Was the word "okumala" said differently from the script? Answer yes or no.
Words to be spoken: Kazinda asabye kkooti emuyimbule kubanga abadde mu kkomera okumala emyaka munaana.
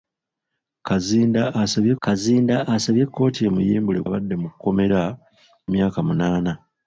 yes